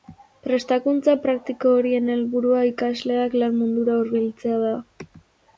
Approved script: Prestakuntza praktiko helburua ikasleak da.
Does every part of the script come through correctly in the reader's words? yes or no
no